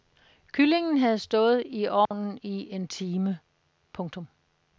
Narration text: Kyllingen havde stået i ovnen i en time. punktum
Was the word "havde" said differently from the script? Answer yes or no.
no